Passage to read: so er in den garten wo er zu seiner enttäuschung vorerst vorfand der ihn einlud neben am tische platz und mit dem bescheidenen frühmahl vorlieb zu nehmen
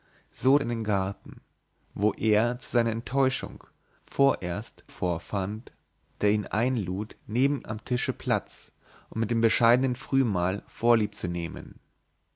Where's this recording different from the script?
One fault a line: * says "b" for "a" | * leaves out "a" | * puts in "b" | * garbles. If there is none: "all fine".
all fine